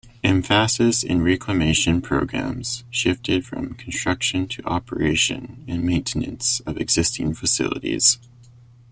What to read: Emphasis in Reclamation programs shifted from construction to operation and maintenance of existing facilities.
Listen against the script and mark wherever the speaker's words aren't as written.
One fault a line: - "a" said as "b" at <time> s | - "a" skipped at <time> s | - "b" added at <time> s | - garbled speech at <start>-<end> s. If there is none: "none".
none